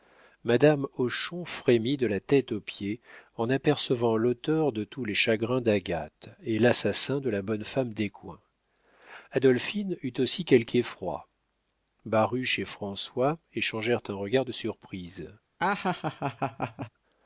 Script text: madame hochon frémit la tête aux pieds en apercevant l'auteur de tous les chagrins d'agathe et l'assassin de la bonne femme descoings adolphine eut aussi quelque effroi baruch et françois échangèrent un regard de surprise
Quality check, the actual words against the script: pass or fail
fail